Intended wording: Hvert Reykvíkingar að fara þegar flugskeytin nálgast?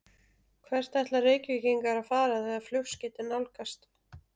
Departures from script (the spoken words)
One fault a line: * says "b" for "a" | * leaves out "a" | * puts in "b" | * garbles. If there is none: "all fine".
* puts in "ætla"